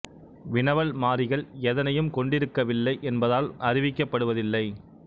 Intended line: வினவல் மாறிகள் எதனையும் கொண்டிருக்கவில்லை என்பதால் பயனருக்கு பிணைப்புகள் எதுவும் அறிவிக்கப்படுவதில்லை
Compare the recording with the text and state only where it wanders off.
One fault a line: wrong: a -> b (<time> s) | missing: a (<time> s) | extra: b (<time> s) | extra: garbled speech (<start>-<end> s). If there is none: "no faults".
missing: பயனருக்கு பிணைப்புகள் எதுவும் (3.5 s)